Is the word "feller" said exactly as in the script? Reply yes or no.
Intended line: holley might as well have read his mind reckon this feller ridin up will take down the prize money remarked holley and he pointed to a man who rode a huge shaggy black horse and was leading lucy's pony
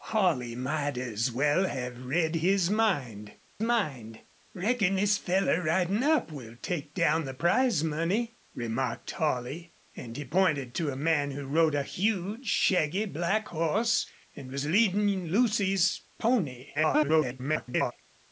yes